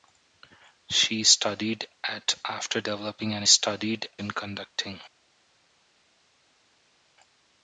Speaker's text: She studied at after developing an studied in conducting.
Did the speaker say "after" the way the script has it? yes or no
yes